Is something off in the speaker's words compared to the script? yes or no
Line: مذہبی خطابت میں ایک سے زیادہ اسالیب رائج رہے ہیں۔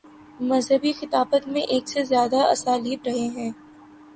yes